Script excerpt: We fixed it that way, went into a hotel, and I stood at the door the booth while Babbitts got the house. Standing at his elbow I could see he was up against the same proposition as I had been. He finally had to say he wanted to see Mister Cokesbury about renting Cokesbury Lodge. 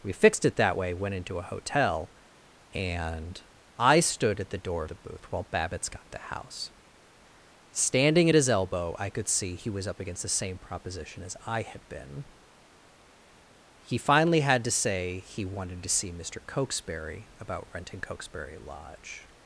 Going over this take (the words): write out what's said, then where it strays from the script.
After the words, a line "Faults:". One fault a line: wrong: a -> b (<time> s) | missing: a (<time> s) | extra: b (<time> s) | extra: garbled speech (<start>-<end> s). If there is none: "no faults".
We fixed it that way, went into a hotel, and I stood at the door the booth while Babbitts got the house. Standing at his elbow I could see he was up against the same proposition as I had been. He finally had to say he wanted to see Mister Cokesbury about renting Cokesbury Lodge.
Faults:
no faults